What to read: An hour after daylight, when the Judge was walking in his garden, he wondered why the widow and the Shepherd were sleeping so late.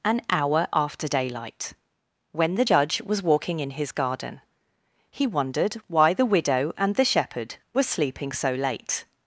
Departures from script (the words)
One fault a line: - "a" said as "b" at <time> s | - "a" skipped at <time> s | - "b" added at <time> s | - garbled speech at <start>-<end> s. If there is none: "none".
none